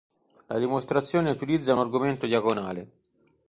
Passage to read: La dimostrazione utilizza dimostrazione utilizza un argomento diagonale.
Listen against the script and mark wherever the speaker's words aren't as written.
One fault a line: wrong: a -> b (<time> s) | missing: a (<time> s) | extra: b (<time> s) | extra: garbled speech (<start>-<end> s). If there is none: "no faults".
missing: dimostrazione utilizza (1.8 s)